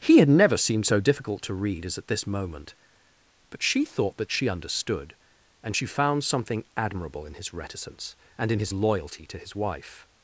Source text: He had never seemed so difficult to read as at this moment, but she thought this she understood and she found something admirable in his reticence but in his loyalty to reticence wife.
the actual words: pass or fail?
fail